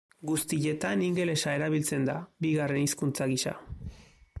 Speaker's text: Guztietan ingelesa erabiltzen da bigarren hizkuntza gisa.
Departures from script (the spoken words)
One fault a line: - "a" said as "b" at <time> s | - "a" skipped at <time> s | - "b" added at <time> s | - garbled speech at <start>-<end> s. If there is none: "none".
none